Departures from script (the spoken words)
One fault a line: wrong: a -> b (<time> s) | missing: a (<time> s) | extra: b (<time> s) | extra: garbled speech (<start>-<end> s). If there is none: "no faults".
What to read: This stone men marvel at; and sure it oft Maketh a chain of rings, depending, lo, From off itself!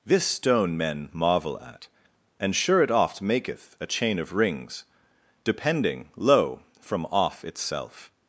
no faults